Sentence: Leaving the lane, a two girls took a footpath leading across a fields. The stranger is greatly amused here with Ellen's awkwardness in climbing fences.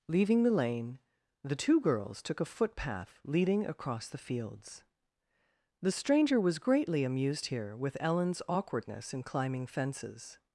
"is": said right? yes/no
no